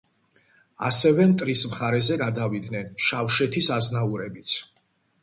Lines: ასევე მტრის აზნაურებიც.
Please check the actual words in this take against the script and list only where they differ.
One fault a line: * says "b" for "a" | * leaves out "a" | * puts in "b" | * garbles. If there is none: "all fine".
* puts in "მხარეზე გადავიდნენ შავშეთის"